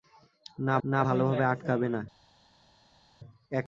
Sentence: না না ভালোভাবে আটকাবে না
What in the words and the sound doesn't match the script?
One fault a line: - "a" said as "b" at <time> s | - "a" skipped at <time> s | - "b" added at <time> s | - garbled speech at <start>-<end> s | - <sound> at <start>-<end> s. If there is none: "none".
none